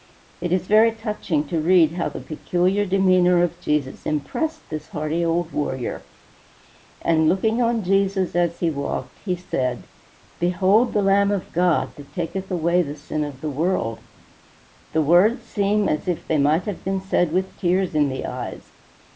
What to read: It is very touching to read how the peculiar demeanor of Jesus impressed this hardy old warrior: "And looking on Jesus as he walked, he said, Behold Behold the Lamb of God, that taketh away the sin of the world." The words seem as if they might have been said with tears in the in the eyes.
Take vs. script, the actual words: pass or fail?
fail